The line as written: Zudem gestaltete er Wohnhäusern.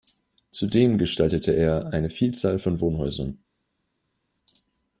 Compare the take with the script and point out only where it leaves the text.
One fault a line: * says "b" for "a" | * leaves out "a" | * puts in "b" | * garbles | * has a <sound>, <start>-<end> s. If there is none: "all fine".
* puts in "eine Vielzahl von"